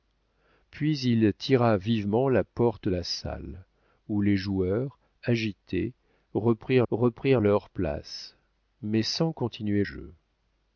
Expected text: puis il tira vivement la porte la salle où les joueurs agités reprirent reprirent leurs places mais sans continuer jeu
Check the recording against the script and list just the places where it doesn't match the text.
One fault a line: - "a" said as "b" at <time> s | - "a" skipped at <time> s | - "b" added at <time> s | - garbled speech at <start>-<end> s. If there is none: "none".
none